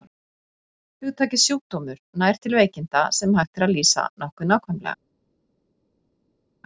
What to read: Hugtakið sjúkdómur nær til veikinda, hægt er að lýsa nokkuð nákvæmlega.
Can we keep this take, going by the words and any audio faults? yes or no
no